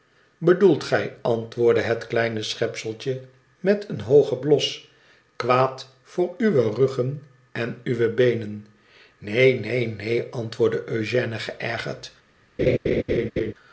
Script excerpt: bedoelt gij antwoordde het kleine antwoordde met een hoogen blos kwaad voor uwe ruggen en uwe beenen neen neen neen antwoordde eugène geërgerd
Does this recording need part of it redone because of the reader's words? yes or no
yes